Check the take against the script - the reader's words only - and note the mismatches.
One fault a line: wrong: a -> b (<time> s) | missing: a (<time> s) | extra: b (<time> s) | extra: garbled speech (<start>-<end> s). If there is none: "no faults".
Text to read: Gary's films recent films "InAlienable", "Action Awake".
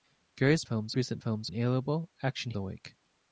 no faults